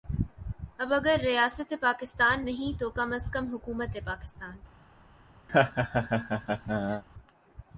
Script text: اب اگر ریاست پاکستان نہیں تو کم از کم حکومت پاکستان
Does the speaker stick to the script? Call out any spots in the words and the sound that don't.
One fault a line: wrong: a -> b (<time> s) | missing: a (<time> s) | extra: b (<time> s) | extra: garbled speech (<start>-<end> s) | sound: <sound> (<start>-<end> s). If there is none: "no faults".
sound: laugh (5.5-7.0 s)